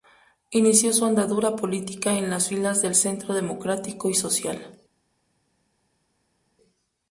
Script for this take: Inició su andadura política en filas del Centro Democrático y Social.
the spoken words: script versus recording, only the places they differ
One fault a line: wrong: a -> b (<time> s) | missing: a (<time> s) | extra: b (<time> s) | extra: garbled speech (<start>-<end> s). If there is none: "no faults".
extra: las (2.3 s)